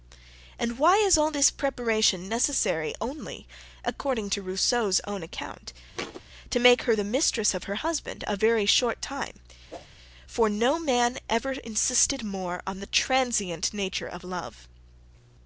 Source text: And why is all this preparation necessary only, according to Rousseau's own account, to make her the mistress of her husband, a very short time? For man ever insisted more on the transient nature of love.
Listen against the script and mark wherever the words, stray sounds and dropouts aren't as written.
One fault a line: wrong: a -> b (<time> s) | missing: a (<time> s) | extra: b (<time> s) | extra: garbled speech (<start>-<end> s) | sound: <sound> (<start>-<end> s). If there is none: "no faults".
sound: thud (5.9-6.2 s)
sound: whoosh (9.7-9.9 s)
extra: no (10.5 s)